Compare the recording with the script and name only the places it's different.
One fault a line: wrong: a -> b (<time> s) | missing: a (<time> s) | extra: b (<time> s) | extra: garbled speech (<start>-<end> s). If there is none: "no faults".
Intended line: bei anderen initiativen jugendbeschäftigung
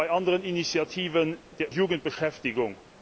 no faults